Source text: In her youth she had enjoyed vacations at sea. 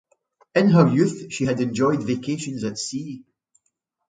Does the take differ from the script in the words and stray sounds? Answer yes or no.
no